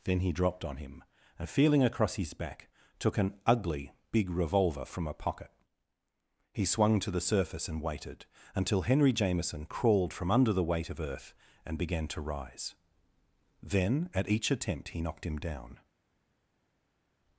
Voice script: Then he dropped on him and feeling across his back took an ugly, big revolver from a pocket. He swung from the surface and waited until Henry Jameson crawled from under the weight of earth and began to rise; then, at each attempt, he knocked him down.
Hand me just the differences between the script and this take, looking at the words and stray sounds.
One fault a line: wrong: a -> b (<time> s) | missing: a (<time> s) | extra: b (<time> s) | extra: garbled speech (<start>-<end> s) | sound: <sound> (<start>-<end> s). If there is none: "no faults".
wrong: from -> to (7.0 s)